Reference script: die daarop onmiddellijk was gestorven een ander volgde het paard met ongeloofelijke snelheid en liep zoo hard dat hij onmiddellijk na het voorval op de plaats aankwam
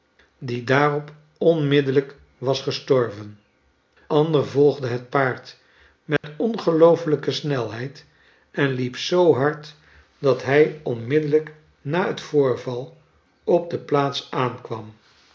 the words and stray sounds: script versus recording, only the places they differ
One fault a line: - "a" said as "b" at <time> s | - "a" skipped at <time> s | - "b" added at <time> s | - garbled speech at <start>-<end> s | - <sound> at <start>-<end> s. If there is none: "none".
- "een" skipped at 3.4 s
- dropout at 6.2-6.2 s